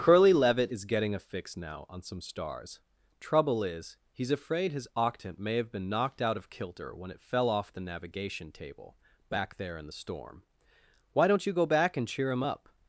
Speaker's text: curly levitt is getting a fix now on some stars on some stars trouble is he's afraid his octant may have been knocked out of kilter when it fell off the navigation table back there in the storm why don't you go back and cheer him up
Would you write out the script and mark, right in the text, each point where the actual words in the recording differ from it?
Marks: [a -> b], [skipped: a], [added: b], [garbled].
curly levitt is getting a fix now on some stars [skipped: on some stars] trouble is he's afraid his octant may have been knocked out of kilter when it fell off the navigation table back there in the storm why don't you go back and cheer him up